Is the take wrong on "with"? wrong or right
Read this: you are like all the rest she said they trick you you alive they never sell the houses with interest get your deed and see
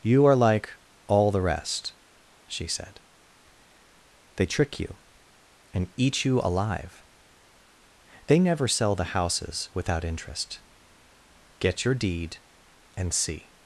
wrong